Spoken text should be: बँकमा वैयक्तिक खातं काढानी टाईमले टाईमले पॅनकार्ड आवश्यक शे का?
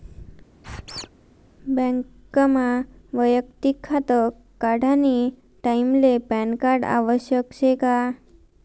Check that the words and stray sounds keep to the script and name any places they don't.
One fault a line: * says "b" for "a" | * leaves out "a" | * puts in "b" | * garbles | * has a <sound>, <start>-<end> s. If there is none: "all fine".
* has a squeak, 0.6-1.1 s
* leaves out "टाईमले"